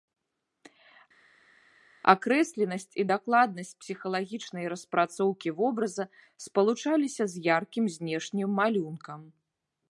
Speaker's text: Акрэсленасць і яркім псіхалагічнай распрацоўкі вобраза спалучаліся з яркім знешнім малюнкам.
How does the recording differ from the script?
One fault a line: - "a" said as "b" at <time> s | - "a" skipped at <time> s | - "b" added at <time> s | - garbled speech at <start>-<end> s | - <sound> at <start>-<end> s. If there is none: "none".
- "яркім" said as "дакладнасць" at 3.1 s